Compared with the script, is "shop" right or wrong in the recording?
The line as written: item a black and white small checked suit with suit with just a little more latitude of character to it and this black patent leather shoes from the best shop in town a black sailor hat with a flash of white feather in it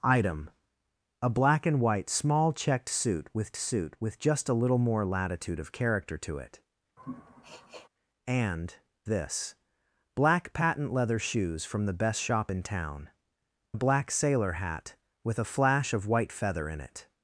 right